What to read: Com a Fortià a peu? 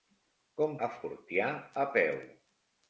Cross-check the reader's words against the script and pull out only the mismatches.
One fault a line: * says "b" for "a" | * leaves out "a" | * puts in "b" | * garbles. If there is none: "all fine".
all fine